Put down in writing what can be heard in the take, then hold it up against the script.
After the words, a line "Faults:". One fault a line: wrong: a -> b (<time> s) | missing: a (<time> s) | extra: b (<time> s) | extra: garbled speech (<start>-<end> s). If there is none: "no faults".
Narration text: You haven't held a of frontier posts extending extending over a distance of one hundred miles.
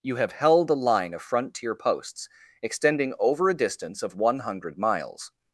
You have held a line of frontier posts extending over a distance of one hundred miles.
Faults:
wrong: haven't -> have (0.1 s)
extra: line (0.7 s)
missing: extending (3.1 s)